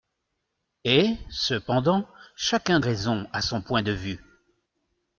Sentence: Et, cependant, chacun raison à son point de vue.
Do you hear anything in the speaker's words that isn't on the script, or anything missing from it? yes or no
no